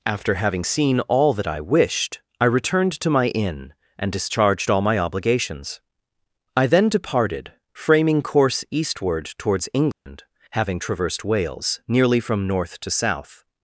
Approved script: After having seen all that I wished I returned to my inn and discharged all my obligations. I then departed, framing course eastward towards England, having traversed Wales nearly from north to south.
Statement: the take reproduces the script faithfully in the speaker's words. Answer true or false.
true